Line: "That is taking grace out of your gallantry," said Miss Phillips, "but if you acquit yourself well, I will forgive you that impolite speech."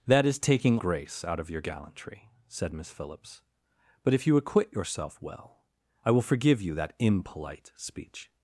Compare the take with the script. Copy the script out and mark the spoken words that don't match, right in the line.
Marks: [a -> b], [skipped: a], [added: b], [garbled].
"That is taking grace out of your gallantry," said Miss Phillips, "but if you acquit yourself well, I will forgive you that impolite speech."